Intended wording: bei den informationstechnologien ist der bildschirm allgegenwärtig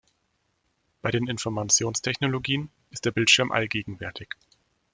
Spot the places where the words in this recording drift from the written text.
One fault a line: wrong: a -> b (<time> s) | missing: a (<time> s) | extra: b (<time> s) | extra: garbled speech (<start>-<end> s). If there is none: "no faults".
no faults